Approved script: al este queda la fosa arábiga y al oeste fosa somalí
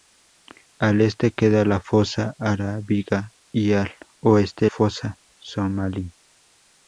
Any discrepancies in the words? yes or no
no